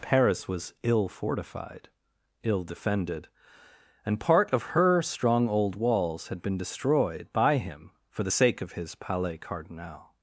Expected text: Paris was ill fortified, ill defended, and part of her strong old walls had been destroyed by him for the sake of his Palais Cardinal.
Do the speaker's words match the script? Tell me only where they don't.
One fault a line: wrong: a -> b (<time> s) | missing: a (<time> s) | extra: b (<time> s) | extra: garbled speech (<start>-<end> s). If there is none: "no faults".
no faults